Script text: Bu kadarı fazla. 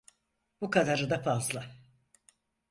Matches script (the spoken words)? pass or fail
fail